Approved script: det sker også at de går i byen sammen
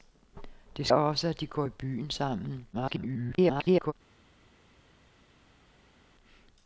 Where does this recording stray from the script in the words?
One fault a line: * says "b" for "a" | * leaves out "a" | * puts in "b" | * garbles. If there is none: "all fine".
* leaves out "sker"
* garbles